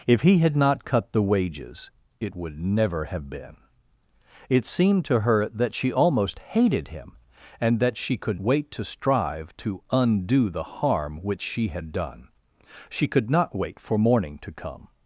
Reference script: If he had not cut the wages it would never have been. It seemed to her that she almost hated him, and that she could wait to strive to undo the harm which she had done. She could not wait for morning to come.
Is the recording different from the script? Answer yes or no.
no